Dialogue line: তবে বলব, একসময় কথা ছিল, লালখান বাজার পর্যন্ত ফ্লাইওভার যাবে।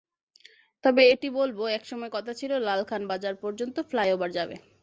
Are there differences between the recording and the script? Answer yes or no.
yes